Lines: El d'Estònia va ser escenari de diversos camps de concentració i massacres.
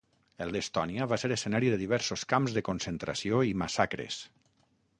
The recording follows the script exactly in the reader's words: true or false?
true